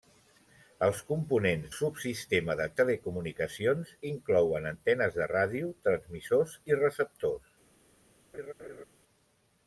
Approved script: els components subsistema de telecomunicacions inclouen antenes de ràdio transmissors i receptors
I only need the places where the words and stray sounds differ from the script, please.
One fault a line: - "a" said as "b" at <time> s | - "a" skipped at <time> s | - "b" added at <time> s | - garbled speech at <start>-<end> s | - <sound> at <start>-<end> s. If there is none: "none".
- laugh at 8.3-8.8 s